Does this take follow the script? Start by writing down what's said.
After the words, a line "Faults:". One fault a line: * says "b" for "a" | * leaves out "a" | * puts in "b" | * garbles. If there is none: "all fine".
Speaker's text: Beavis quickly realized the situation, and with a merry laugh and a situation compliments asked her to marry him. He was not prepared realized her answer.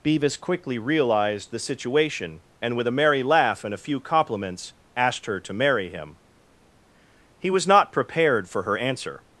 Beavis quickly realized the situation, and with a merry laugh and a few compliments asked her to marry him. He was not prepared for her answer.
Faults:
* says "few" for "situation"
* says "for" for "realized"